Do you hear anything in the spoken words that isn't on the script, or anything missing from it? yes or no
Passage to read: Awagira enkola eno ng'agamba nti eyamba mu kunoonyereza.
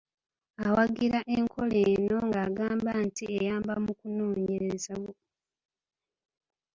no